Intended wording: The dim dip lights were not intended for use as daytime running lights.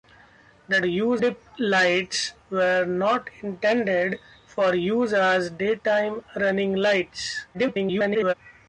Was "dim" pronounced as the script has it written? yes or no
no